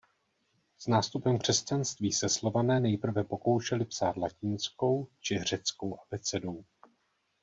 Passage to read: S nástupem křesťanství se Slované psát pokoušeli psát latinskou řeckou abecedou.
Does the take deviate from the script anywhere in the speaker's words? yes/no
yes